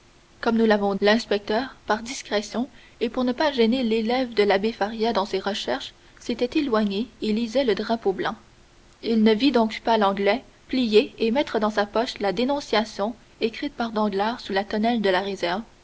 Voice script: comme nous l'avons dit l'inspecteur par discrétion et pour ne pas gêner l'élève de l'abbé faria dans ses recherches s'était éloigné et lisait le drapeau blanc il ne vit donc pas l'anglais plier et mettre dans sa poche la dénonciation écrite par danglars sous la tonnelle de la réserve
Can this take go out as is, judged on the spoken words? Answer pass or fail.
fail